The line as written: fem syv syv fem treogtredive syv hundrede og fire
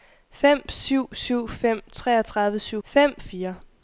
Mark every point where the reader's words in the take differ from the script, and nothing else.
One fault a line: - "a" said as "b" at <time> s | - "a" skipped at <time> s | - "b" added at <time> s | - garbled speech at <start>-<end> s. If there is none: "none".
- "hundrede" said as "fem" at 2.8 s